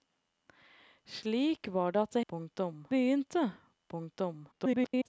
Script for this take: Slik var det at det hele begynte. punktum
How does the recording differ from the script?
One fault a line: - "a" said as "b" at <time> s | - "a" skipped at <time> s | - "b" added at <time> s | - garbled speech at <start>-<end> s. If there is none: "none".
- "hele" said as "punktum" at 2.3 s
- garbled speech at 4.5-5.1 s